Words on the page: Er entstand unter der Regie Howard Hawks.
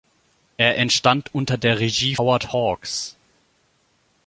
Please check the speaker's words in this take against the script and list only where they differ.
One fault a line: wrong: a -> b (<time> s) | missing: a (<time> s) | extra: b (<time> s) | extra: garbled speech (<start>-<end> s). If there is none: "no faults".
no faults